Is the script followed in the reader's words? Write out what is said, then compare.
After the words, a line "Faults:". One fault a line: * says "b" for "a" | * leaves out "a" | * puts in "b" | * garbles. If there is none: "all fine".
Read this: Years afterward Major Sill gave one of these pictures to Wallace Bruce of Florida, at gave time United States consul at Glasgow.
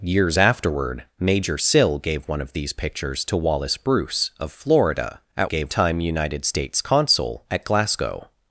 Years afterward Major Sill gave one of these pictures to Wallace Bruce of Florida, at gave time United States consul at Glasgow.
Faults:
all fine